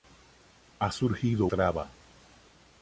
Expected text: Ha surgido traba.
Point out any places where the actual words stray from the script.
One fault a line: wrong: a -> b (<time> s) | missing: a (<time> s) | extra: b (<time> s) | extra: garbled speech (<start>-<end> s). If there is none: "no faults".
no faults